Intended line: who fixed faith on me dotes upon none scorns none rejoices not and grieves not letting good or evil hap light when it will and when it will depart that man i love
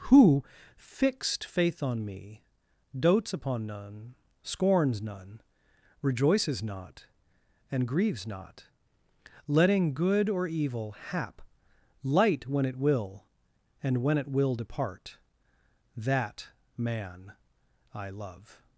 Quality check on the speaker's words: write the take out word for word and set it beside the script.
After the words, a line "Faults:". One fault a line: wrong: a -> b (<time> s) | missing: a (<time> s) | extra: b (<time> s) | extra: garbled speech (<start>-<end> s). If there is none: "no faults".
who fixed faith on me dotes upon none scorns none rejoices not and grieves not letting good or evil hap light when it will and when it will depart that man i love
Faults:
no faults